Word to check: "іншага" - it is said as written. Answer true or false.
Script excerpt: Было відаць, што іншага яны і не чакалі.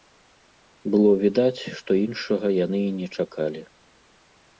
true